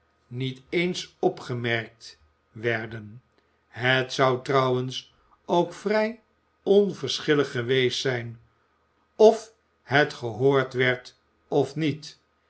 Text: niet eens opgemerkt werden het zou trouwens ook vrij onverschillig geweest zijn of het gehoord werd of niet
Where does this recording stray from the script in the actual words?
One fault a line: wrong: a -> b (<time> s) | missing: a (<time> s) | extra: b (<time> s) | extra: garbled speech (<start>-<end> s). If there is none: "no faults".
no faults